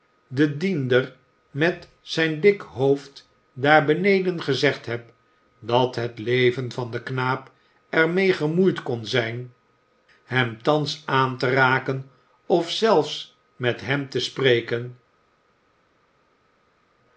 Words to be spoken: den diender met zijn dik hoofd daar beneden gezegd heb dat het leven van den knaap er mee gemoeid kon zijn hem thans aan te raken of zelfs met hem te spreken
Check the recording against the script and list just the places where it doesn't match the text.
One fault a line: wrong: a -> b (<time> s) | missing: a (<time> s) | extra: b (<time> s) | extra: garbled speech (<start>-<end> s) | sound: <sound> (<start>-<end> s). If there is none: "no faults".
no faults